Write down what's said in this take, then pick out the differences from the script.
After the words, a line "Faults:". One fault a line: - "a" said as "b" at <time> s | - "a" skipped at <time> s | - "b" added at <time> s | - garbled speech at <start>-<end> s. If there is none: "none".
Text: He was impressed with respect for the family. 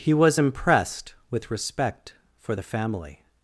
He was impressed with respect for the family.
Faults:
none